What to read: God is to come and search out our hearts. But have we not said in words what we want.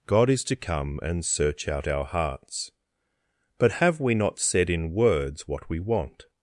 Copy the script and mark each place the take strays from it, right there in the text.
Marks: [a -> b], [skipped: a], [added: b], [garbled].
God is to come and search out our hearts. But have we not said in words what we want.